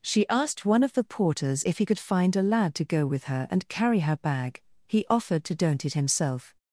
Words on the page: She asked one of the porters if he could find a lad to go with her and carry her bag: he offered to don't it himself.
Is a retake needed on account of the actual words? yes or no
no